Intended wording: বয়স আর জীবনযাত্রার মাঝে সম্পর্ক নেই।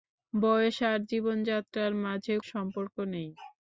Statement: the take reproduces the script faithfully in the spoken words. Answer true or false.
true